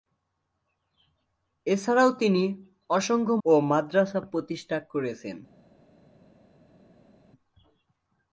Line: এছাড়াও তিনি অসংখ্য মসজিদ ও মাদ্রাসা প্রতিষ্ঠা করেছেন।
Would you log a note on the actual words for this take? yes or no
yes